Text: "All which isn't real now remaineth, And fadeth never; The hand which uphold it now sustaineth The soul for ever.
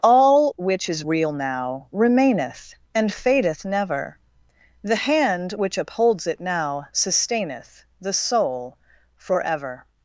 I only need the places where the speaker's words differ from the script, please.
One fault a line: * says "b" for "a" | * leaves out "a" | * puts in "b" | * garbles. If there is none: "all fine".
* says "is" for "isn't"
* says "upholds" for "uphold"